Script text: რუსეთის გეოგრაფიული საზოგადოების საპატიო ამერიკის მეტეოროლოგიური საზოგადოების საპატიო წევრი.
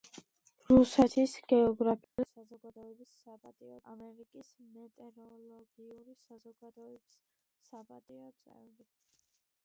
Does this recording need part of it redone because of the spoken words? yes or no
no